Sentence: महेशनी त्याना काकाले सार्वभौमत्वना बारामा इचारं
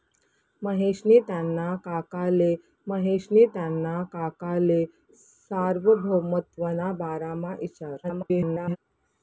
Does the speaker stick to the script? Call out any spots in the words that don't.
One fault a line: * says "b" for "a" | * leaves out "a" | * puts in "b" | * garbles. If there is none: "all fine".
* puts in "महेशनी त्याना काकाले"
* garbles